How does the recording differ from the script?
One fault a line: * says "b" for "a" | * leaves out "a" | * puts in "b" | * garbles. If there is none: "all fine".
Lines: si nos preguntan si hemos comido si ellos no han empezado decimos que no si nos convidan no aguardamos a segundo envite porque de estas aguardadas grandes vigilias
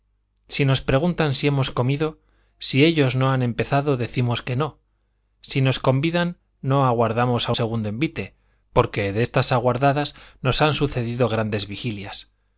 * puts in "nos han sucedido"